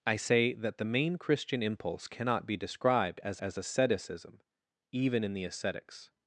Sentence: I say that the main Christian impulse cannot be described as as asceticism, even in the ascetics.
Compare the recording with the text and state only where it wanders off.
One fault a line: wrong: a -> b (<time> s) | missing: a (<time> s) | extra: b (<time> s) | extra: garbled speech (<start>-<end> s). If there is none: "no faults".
no faults